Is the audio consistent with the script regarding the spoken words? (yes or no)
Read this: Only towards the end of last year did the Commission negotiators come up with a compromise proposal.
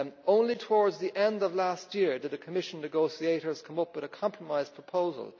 yes